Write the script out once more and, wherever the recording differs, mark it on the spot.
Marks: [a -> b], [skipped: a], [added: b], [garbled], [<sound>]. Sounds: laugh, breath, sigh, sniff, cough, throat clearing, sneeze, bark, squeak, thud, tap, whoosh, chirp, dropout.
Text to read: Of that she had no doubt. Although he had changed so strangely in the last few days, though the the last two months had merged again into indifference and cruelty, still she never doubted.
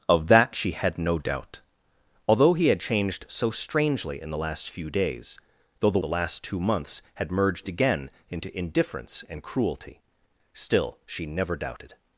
Of that she had no doubt. Although he had changed so strangely in the last few days, though the the last two months had merged again into indifference and cruelty, still she never doubted.